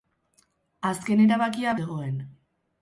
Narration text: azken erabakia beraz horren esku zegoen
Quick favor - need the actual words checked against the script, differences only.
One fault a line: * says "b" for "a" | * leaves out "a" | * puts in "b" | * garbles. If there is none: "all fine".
* leaves out "beraz horren esku"